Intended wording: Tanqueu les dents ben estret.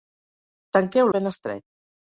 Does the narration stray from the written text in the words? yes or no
yes